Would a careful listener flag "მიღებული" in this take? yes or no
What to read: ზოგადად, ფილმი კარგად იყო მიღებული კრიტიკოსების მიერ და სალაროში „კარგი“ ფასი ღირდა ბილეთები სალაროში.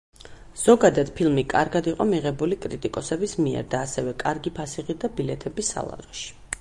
no